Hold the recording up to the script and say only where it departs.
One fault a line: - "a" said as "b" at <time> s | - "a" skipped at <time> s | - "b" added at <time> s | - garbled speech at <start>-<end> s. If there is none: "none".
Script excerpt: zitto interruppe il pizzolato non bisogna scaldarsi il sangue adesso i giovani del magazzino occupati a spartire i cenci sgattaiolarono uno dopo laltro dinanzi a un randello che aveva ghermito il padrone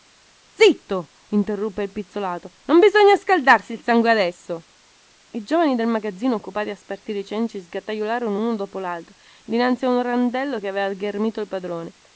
none